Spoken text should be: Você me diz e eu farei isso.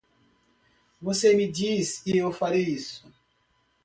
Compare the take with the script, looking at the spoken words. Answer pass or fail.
pass